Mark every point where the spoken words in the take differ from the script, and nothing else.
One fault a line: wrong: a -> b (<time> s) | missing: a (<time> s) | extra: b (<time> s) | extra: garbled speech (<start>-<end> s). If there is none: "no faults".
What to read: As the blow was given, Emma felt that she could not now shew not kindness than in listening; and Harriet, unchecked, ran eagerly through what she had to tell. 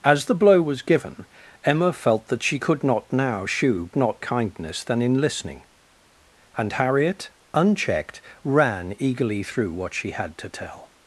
no faults